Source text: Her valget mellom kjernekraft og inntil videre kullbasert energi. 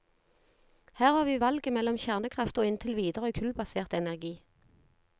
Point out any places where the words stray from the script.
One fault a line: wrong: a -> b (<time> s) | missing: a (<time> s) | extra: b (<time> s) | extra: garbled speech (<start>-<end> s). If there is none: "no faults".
extra: har vi (1.1 s)